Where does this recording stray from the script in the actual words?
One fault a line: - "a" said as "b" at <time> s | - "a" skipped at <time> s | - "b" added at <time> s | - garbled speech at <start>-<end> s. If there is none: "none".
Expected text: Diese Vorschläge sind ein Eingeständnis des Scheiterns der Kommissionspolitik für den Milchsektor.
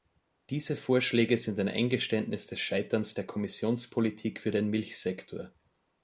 none